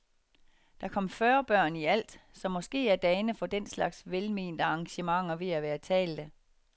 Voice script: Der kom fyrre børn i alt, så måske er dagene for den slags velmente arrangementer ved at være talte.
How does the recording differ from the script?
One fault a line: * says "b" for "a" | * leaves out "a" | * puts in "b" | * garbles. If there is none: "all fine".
all fine